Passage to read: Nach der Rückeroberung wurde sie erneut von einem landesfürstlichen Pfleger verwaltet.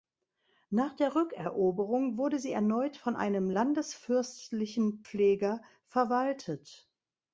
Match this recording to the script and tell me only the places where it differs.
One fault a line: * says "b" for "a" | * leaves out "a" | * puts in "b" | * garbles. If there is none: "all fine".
all fine